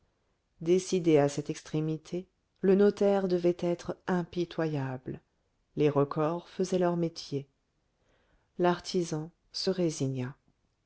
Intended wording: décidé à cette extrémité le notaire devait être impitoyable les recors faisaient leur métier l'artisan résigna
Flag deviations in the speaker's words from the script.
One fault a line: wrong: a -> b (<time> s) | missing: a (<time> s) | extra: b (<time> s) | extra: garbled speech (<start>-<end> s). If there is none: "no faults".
extra: se (9.5 s)